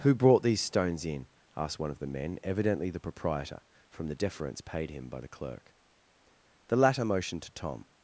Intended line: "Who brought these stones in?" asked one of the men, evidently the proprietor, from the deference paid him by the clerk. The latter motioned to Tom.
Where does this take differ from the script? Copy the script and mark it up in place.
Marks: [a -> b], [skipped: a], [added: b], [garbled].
"Who brought these stones in?" asked one of the men, evidently the proprietor, from the deference paid him by the clerk. The latter motioned to Tom.